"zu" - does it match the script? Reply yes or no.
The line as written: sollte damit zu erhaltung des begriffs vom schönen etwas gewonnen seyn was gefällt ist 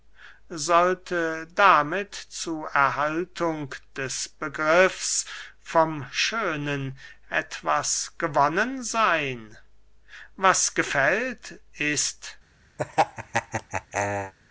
yes